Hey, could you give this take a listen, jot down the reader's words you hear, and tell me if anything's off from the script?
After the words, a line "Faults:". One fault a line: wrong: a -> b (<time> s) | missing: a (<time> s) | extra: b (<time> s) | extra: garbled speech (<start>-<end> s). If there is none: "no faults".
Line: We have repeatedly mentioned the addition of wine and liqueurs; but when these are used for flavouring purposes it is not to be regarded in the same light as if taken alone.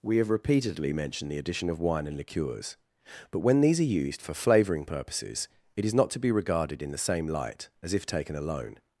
We have repeatedly mentioned the addition of wine and liqueurs; but when these are used for flavouring purposes it is not to be regarded in the same light as if taken alone.
Faults:
no faults